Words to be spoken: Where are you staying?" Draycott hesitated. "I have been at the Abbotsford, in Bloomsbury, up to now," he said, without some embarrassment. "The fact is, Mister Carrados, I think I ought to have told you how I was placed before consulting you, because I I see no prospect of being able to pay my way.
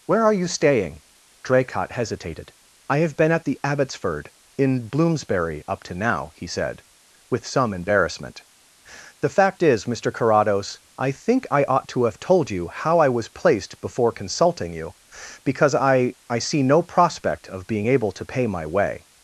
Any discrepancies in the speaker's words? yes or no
yes